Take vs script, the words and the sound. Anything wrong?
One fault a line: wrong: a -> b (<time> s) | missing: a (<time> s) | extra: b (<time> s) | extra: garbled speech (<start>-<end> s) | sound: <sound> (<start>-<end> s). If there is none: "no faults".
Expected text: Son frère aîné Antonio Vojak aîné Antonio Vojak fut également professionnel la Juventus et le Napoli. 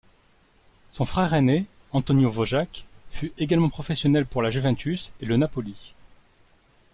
missing: aîné Antonio Vojak (2.9 s)
extra: pour (4.3 s)